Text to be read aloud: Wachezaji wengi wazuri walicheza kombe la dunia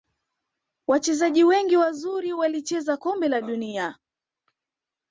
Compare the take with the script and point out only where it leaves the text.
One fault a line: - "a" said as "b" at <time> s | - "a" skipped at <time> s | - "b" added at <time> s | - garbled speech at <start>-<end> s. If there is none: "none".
none